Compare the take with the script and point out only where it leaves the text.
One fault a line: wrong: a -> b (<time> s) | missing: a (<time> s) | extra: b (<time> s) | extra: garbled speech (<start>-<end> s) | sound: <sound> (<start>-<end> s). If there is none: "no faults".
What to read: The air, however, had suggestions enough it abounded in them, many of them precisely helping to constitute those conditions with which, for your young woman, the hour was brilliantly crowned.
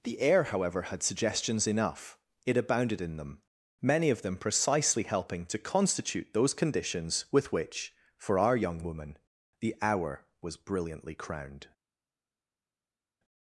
wrong: your -> our (8.4 s)